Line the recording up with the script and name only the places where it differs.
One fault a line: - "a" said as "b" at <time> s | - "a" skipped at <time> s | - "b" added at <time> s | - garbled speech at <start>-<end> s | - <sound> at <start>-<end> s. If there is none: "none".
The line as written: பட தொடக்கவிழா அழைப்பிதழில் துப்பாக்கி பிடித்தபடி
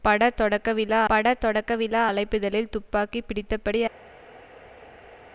- "பட தொடக்கவிழா" added at 1.1 s